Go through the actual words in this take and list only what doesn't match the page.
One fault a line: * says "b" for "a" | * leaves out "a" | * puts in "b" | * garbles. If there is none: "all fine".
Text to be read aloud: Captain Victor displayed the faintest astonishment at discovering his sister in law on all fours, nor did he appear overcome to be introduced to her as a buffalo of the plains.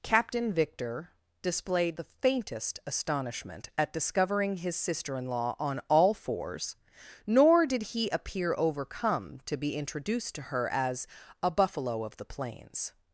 all fine